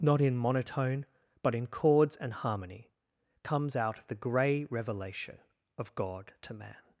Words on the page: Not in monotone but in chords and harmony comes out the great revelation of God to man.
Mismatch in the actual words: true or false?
true